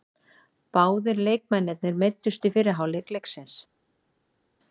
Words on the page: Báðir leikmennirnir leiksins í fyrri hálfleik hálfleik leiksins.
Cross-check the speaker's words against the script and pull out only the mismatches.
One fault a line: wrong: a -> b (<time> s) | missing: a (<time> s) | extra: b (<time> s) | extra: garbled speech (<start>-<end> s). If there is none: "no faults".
wrong: leiksins -> meiddust (2.0 s)
missing: hálfleik (3.1 s)